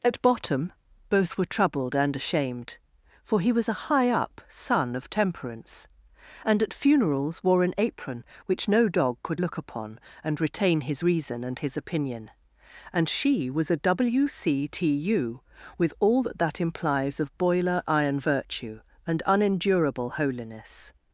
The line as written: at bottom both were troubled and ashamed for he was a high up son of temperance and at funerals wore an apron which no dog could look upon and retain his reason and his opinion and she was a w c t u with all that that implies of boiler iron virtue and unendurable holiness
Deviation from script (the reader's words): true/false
false